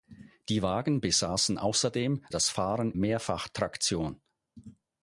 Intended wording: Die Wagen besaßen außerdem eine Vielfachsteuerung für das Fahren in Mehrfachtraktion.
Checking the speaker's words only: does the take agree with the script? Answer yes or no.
no